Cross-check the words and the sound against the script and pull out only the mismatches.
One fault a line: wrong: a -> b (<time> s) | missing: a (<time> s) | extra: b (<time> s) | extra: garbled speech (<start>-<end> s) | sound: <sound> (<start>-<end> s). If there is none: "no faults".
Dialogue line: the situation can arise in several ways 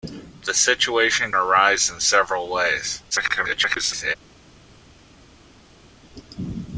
missing: can (1.3 s)
extra: garbled speech (3.1-4.2 s)